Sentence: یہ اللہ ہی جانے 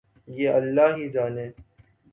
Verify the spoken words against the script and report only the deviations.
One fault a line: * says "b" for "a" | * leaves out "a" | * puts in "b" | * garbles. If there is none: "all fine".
all fine